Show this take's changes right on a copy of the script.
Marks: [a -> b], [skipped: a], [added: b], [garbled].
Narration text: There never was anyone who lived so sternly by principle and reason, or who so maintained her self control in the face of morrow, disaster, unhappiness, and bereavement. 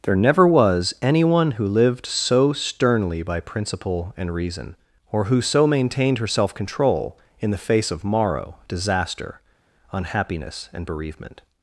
There never was anyone who lived so sternly by principle and reason, or who so maintained her self control in the face of morrow, disaster, unhappiness, and bereavement.